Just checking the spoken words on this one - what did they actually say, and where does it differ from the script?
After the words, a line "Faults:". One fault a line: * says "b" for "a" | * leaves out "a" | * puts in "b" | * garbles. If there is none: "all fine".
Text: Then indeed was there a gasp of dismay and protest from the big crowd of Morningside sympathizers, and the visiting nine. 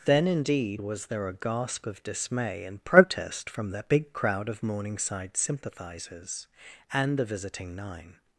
Then indeed was there a gasp of dismay and protest from the big crowd of Morningside sympathizers, and the visiting nine.
Faults:
all fine